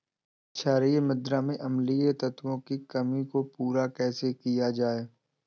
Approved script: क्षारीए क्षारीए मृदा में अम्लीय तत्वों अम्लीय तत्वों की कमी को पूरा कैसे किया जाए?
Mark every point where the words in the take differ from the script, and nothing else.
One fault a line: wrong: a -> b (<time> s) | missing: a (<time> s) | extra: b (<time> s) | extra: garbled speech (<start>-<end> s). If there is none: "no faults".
missing: क्षारीए (1.0 s)
missing: अम्लीय तत्वों (2.6 s)